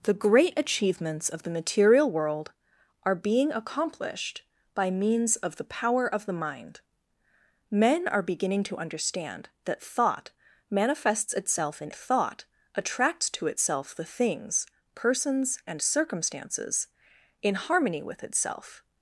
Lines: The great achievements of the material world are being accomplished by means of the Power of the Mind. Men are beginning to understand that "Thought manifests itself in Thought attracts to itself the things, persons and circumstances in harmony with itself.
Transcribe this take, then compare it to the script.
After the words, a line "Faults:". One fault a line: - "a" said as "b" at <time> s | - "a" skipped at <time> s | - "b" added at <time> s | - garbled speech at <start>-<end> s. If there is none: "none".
The great achievements of the material world are being accomplished by means of the Power of the Mind. Men are beginning to understand that "Thought manifests itself in Thought attracts to itself the things, persons and circumstances in harmony with itself.
Faults:
none